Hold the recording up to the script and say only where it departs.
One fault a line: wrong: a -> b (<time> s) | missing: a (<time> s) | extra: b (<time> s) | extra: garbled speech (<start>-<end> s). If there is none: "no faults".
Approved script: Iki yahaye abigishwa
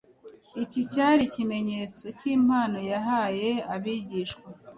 extra: cyari ikimenyetso cy'impano (0.9 s)